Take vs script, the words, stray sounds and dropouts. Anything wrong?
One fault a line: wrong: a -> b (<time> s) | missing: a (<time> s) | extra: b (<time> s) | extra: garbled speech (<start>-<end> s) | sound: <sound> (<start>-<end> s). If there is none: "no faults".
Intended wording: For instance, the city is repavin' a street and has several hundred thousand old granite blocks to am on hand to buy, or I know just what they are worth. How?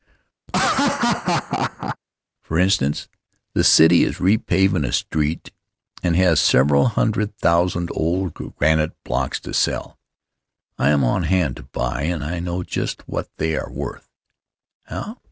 sound: laugh (0.5-2.0 s)
extra: sell I (9.5 s)
wrong: or -> and (12.0 s)